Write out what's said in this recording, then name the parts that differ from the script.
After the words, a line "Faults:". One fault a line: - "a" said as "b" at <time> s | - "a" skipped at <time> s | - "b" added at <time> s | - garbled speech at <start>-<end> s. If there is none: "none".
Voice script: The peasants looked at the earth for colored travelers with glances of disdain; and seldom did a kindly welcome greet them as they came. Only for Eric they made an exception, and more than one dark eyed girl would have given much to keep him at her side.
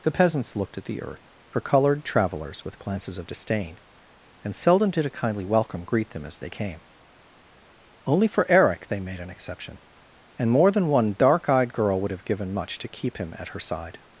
The peasants looked at the earth for colored travelers with glances of disdain; and seldom did a kindly welcome greet them as they came. Only for Eric they made an exception, and more than one dark eyed girl would have given much to keep him at her side.
Faults:
none